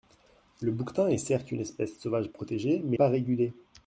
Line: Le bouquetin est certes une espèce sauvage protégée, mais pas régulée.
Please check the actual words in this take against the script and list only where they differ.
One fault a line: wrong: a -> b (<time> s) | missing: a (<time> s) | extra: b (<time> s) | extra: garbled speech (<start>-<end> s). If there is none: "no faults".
no faults